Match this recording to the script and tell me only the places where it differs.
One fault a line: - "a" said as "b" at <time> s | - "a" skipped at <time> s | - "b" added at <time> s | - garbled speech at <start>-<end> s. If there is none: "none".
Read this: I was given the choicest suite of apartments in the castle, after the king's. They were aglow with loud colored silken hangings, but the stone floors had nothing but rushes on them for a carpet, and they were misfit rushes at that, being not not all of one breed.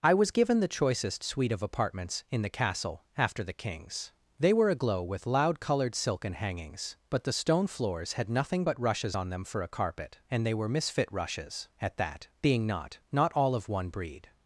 none